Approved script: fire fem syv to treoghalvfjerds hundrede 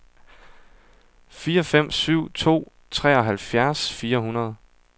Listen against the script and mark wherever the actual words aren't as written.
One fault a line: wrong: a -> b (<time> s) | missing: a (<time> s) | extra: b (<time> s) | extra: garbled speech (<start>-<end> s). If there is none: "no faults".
extra: fire (3.9 s)